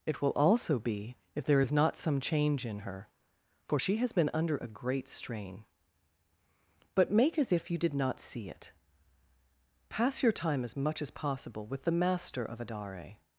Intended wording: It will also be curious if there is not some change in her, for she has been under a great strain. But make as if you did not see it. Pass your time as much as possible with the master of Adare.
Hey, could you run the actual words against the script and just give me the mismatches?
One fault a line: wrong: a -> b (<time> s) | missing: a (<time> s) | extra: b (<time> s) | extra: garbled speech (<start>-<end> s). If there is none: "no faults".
missing: curious (1.1 s)